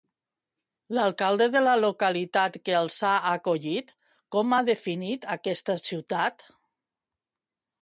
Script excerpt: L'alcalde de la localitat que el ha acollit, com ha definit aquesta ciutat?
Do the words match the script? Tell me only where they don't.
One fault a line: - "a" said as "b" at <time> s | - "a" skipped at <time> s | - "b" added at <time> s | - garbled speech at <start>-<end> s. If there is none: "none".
- "el" said as "els" at 2.8 s